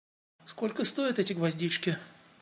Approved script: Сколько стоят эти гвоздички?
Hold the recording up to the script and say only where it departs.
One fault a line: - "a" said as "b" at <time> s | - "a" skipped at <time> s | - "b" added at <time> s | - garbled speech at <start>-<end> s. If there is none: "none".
none